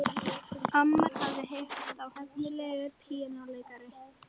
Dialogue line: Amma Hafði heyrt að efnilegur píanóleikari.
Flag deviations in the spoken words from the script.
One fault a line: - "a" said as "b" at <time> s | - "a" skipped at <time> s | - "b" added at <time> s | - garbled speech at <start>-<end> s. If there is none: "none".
none